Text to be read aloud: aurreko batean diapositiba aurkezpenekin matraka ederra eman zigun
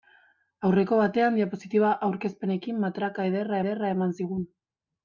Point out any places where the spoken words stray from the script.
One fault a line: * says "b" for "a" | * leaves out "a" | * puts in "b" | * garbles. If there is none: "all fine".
* puts in "ederra"